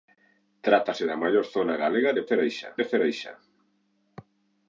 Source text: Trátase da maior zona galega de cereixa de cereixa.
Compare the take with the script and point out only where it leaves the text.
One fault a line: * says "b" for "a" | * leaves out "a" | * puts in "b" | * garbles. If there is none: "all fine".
all fine